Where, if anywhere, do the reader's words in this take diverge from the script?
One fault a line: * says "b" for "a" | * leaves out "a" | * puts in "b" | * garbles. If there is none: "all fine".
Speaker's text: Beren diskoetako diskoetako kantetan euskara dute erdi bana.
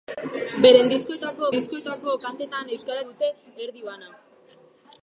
all fine